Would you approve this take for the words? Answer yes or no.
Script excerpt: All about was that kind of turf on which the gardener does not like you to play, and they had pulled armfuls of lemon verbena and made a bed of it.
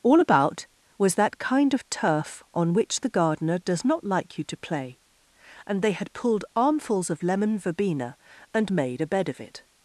yes